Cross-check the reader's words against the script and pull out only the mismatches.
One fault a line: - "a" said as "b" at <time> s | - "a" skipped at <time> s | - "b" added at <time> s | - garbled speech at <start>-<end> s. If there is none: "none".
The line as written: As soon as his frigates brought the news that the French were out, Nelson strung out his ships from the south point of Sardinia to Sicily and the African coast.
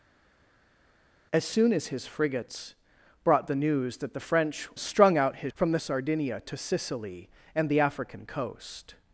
- "were out Nelson" skipped at 4.7 s
- "ships" skipped at 5.5 s
- "south point of" skipped at 5.8 s